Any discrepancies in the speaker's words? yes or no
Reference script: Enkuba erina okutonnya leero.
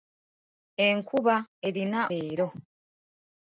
yes